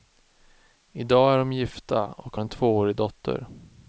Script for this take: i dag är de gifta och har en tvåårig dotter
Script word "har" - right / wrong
wrong